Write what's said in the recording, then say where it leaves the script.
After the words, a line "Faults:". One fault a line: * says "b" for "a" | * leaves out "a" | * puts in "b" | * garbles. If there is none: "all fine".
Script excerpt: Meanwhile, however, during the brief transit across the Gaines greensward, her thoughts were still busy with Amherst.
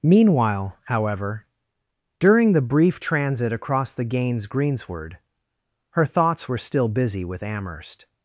Meanwhile, however, during the brief transit across the Gaines greensward, her thoughts were still busy with Amherst.
Faults:
all fine